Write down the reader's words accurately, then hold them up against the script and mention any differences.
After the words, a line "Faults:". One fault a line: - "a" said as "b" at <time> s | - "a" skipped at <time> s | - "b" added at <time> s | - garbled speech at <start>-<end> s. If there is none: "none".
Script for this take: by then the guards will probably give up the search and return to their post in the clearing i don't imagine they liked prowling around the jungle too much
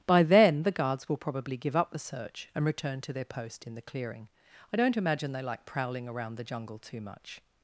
by then the guards will probably give up the search and return to their post in the clearing i don't imagine they like prowling around the jungle too much
Faults:
- "liked" said as "like" at 5.4 s